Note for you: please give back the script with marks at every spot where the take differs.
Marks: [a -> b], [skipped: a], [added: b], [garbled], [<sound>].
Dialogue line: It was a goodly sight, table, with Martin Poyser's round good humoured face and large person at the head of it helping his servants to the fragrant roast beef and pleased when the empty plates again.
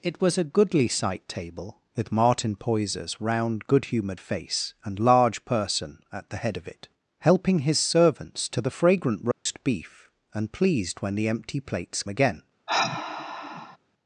It was a goodly sight, table, with Martin Poyser's round good humoured face and large person at the head of it helping his servants to the fragrant roast [dropout] beef and pleased when the empty plates again. [sigh]